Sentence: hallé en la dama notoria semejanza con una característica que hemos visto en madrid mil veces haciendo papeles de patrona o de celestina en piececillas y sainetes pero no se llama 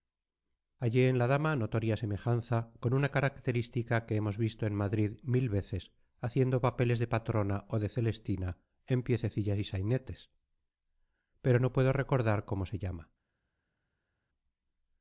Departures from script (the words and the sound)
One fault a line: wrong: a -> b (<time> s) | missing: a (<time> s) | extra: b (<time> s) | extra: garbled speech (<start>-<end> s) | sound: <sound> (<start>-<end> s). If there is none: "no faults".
extra: puedo recordar cómo (11.7 s)